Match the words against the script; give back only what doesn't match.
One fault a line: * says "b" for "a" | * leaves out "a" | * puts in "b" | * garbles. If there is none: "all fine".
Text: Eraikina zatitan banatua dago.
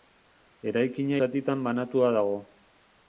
all fine